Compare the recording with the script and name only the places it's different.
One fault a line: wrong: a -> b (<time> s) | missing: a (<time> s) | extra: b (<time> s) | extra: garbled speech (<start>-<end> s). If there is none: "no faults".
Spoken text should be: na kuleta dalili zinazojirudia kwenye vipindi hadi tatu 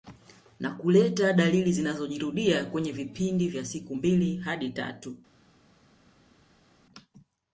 extra: vya siku mbili (3.5 s)